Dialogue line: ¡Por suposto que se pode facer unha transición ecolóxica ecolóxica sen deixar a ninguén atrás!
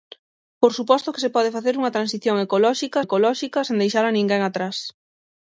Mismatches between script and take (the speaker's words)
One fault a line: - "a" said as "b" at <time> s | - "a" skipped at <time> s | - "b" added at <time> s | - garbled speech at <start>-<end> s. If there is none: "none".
none